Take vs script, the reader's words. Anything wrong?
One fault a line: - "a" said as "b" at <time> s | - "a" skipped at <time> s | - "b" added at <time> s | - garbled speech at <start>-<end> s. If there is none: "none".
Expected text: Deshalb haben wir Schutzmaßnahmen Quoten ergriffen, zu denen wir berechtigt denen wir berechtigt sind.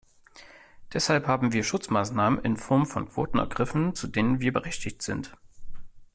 - "in Form von" added at 2.4 s
- "denen wir berechtigt" skipped at 5.0 s